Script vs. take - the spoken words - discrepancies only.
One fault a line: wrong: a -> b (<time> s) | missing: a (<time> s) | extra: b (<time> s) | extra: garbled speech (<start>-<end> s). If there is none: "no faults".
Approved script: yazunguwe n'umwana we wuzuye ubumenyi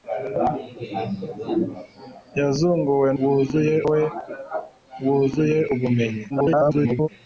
wrong: n'umwana -> wuzuye (3.2 s)
extra: garbled speech (6.3-7.1 s)